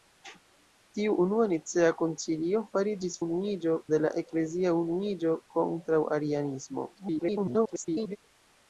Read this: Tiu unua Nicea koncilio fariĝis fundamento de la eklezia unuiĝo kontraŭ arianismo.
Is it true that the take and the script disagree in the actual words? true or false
true